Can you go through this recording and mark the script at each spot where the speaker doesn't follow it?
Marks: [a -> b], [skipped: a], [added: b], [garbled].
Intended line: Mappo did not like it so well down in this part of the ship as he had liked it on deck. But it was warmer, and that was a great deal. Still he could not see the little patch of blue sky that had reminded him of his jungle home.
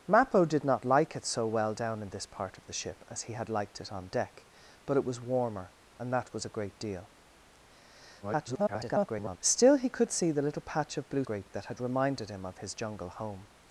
Mappo did not like it so well down in this part of the ship as he had liked it on deck. But it was warmer, and that was a great deal. [garbled] Still he could [skipped: not] see the little patch of blue [sky -> great] that had reminded him of his jungle home.